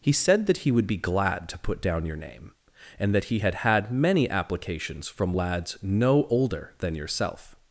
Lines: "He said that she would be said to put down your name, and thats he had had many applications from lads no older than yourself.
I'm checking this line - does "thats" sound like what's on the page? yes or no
no